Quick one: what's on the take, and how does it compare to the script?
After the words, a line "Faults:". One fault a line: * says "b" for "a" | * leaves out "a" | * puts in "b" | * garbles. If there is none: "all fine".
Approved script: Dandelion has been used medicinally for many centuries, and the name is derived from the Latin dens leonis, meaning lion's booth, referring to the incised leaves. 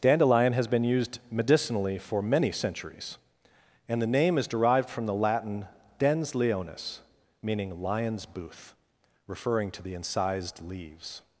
Dandelion has been used medicinally for many centuries, and the name is derived from the Latin dens leonis, meaning lion's booth, referring to the incised leaves.
Faults:
all fine